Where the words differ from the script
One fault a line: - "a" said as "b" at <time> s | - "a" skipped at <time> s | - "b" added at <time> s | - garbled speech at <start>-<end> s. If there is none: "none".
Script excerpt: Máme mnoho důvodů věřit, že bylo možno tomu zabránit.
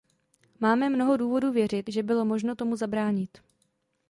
none